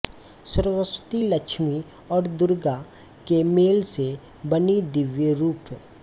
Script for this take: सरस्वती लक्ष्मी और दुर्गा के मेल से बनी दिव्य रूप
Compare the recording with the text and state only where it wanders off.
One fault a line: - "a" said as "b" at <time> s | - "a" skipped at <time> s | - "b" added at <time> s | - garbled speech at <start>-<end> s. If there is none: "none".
none